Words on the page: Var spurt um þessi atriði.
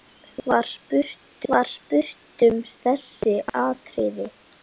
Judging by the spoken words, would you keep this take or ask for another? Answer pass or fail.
fail